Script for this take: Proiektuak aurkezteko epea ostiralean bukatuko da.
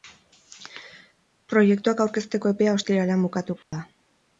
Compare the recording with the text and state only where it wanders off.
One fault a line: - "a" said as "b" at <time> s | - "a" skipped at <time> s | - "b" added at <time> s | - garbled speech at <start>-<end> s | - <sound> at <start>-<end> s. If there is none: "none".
- dropout at 3.6-3.7 s